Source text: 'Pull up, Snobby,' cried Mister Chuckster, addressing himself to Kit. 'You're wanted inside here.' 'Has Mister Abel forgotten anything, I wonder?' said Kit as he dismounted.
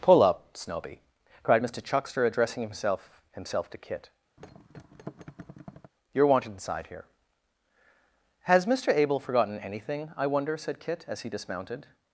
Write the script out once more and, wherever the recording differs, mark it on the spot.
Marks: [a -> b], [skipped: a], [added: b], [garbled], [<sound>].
'Pull up, Snobby,' cried Mister Chuckster, addressing himself [added: himself] to Kit. [thud] 'You're wanted inside here.' 'Has Mister Abel forgotten anything, I wonder?' said Kit as he dismounted.